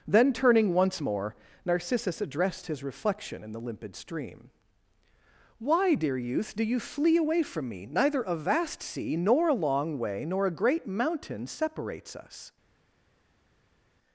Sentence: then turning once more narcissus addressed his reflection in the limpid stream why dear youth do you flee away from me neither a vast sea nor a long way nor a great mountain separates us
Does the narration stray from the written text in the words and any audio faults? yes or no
no